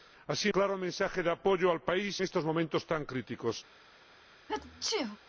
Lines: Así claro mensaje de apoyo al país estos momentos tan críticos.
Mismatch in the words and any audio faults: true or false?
true